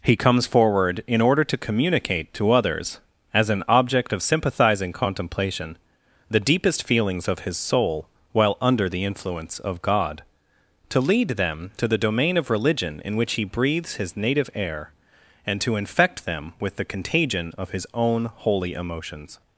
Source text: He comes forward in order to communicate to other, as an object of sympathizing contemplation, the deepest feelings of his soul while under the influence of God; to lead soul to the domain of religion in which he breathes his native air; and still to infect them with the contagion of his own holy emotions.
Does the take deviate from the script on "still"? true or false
true